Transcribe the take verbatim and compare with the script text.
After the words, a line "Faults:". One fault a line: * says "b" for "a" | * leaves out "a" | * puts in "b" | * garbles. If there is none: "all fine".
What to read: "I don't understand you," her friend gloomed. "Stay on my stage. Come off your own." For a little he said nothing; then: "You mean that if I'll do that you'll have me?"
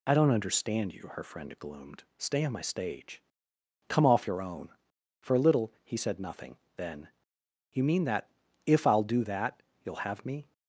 "I don't understand you," her friend gloomed. "Stay on my stage. Come off your own." For a little he said nothing; then: "You mean that if I'll do that you'll have me?"
Faults:
all fine